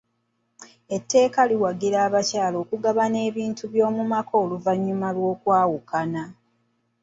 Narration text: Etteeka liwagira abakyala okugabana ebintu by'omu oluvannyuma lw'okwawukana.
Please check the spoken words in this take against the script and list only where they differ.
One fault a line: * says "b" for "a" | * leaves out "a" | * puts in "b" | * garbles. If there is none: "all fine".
* puts in "maka"